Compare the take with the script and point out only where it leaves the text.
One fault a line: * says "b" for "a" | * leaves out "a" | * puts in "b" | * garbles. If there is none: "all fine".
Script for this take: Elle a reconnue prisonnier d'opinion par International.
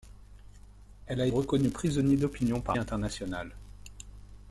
all fine